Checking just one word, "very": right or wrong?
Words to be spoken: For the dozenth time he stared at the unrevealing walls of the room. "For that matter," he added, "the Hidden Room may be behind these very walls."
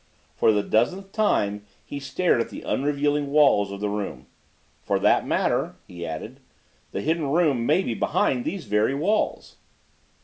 right